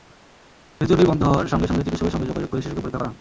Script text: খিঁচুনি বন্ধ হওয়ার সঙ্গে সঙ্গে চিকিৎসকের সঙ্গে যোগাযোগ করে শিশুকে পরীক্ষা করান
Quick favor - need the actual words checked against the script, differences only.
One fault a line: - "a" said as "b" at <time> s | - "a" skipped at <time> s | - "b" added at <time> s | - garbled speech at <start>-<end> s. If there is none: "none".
none